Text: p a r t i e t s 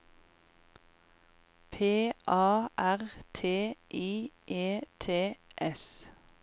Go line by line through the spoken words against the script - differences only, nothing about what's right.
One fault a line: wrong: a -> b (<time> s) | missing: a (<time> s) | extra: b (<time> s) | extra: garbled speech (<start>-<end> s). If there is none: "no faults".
no faults